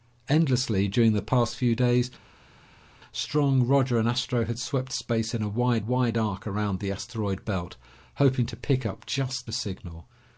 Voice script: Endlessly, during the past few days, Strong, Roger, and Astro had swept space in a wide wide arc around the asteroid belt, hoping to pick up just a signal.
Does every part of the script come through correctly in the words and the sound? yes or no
yes